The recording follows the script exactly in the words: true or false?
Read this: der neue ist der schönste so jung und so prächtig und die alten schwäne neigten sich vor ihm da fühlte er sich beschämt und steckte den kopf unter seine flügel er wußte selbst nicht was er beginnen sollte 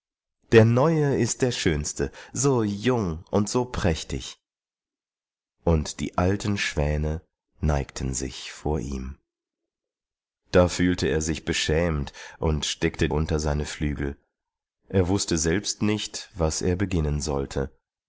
false